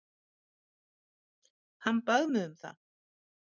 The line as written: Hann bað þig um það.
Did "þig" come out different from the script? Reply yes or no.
yes